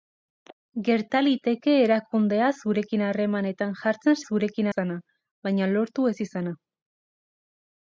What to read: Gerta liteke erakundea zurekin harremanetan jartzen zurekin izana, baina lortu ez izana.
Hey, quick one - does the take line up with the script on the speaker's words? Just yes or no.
yes